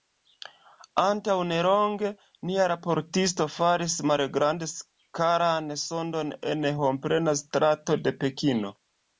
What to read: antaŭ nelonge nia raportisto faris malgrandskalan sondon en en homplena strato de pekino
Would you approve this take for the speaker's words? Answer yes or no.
no